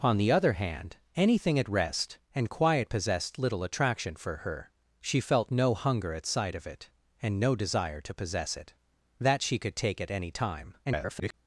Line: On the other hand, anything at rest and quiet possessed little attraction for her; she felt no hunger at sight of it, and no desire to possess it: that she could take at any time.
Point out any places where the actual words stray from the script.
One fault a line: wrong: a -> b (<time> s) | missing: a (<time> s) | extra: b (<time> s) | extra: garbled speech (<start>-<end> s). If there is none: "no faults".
extra: garbled speech (10.8-11.3 s)